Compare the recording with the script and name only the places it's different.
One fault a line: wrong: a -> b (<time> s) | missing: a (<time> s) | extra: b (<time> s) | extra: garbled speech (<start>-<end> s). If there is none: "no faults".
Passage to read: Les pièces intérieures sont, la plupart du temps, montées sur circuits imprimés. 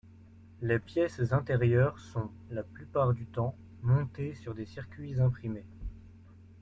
extra: des (4.5 s)